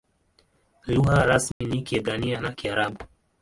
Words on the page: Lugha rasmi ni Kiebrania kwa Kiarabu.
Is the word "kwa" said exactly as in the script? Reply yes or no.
no